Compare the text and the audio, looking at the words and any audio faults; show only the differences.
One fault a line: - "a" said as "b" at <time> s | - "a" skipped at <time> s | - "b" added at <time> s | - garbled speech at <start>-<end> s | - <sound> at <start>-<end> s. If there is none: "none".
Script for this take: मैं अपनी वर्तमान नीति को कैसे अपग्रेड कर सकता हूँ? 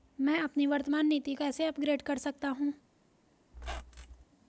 - "को" skipped at 1.4 s
- squeak at 3.5-4.2 s